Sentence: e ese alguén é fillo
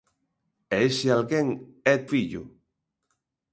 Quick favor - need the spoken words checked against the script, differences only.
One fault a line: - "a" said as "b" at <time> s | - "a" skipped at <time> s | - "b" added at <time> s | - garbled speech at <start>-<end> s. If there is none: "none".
none